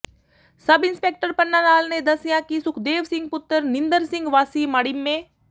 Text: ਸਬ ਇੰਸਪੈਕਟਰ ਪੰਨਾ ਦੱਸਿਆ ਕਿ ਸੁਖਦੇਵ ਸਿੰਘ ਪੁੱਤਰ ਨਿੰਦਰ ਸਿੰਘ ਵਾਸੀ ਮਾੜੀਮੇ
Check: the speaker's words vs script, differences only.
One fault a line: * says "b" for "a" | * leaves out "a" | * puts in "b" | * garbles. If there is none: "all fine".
* puts in "ਲਾਲ ਨੇ"